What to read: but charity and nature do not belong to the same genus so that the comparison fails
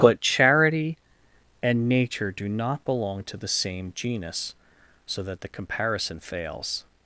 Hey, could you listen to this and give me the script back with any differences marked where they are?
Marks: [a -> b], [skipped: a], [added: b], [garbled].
but charity and nature do not belong to the same genus so that the comparison fails